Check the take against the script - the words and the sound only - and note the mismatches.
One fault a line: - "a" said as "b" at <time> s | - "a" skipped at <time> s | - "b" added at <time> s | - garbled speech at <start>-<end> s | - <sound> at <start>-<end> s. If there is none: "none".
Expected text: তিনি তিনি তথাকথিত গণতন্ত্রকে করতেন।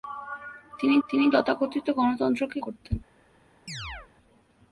- chirp at 3.7-4.1 s